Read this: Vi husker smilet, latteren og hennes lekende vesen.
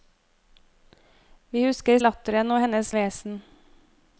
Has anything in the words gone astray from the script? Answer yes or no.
yes